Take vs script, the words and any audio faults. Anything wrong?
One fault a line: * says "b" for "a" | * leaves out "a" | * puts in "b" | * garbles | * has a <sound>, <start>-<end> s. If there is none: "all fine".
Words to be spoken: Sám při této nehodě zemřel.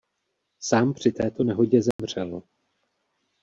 * has a dropout, 1.9-2.0 s